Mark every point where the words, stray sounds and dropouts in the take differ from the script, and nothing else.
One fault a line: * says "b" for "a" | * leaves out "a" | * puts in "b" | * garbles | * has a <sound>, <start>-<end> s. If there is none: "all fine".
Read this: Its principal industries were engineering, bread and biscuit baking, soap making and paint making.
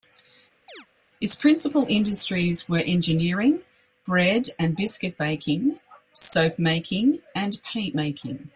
* has a chirp, 0.7-0.9 s